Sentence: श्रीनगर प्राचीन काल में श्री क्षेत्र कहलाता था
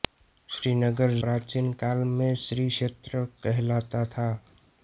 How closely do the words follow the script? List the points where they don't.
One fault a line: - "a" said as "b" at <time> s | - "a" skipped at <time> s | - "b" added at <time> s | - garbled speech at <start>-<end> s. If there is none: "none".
none